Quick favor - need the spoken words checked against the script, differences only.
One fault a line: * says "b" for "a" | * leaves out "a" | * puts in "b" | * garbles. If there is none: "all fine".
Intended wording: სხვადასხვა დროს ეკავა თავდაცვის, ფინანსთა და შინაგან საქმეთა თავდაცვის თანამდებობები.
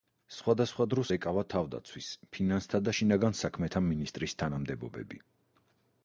* says "მინისტრის" for "თავდაცვის"